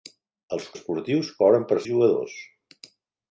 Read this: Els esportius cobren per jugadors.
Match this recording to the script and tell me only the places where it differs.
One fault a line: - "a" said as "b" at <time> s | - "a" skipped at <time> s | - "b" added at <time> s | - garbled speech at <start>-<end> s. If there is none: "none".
none